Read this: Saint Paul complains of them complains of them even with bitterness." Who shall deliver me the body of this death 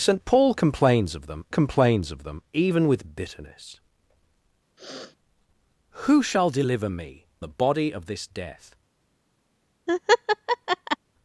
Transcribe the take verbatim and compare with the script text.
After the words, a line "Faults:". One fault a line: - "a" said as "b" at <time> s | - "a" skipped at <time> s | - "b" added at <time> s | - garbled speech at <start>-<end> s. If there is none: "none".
Saint Paul complains of them complains of them even with bitterness." Who shall deliver me the body of this death
Faults:
none